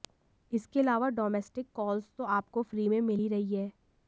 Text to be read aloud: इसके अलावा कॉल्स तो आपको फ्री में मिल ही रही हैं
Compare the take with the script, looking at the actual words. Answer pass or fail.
fail